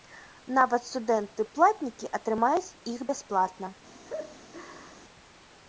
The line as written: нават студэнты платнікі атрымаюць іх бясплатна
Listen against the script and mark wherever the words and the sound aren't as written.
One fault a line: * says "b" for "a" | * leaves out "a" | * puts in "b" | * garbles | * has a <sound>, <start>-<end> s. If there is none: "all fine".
* has a laugh, 4.0-5.1 s